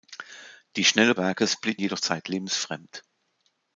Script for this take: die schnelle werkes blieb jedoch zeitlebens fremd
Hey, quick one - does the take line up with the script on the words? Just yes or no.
yes